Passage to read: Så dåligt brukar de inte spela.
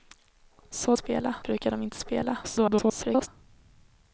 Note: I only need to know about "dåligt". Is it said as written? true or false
false